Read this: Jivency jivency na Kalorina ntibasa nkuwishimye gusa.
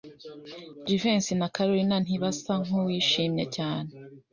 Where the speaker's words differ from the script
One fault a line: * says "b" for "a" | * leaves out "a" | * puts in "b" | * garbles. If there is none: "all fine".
* leaves out "jivency"
* says "cyane" for "gusa"